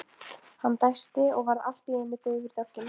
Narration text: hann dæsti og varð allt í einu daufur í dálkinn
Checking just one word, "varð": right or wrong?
right